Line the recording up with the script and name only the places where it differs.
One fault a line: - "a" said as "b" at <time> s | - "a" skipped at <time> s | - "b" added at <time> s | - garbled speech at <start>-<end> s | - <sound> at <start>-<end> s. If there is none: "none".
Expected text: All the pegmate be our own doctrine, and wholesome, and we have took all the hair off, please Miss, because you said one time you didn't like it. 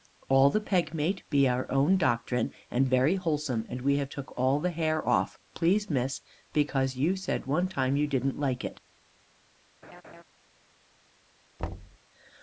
- "very" added at 2.9 s
- laugh at 9.8-10.2 s
- thud at 11.6-12.0 s